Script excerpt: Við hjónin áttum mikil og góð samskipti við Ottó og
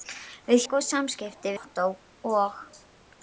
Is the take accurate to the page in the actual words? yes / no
no